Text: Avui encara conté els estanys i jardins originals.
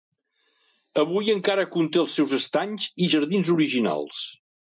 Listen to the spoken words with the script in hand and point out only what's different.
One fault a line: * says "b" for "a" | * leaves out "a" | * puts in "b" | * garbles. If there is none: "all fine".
* puts in "seus"